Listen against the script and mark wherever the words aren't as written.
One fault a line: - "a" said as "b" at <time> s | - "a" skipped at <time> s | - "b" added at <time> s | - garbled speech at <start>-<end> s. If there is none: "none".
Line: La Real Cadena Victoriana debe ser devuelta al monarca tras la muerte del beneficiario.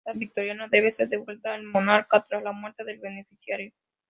- "Real Cadena" skipped at 0.1 s